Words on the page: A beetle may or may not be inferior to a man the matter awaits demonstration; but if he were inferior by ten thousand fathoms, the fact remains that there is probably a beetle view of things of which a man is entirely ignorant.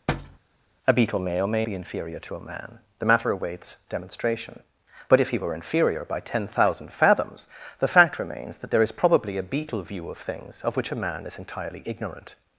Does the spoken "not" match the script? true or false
false